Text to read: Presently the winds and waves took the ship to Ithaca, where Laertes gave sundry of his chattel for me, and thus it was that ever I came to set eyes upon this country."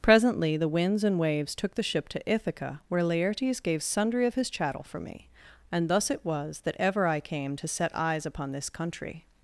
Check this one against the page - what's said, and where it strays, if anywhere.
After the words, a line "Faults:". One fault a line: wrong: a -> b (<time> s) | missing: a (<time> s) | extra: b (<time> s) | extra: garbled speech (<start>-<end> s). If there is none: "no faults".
Presently the winds and waves took the ship to Ithaca, where Laertes gave sundry of his chattel for me, and thus it was that ever I came to set eyes upon this country."
Faults:
no faults